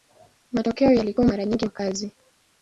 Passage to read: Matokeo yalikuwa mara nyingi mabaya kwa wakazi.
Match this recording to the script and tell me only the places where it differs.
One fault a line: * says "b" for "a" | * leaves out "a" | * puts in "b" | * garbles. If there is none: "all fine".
* leaves out "mabaya kwa"